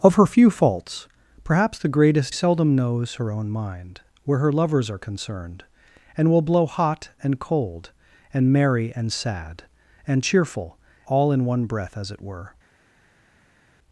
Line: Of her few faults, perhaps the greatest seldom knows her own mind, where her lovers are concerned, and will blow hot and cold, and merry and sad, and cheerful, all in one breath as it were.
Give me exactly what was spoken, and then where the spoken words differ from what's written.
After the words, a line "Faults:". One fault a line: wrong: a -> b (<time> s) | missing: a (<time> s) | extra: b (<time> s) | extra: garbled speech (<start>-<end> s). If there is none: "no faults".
Of her few faults, perhaps the greatest seldom knows her own mind, where her lovers are concerned, and will blow hot and cold, and merry and sad, and cheerful, all in one breath as it were.
Faults:
no faults